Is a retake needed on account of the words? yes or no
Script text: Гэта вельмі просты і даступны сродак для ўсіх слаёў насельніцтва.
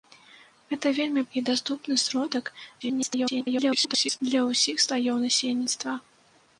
yes